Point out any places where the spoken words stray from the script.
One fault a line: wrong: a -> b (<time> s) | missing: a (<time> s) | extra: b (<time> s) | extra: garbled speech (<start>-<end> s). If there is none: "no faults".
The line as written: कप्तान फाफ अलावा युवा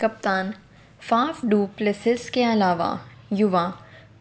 extra: डु प्लेसिस के (1.4 s)